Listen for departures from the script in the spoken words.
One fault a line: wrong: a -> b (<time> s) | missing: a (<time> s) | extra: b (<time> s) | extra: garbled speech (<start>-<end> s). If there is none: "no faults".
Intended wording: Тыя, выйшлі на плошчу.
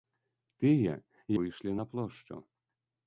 no faults